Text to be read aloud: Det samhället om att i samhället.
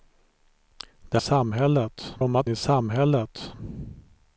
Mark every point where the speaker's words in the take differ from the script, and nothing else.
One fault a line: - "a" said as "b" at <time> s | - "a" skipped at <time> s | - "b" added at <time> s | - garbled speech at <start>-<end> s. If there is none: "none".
none